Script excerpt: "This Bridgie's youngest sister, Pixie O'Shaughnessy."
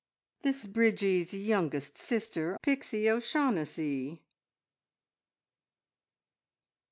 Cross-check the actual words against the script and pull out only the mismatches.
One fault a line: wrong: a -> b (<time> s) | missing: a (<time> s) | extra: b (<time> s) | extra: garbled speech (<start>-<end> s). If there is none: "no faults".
no faults